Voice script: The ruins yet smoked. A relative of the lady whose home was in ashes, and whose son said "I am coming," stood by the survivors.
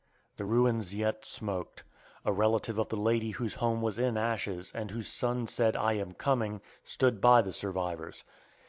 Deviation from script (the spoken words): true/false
false